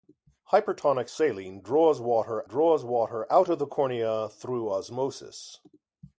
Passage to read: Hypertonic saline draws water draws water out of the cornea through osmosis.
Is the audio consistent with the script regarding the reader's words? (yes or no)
yes